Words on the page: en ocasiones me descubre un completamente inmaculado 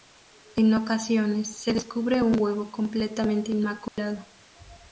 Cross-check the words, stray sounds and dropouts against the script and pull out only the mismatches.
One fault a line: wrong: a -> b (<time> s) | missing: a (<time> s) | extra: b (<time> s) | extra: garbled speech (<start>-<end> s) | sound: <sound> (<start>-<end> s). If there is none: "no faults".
wrong: me -> se (1.6 s)
extra: huevo (2.4 s)
sound: dropout (3.9-4.0 s)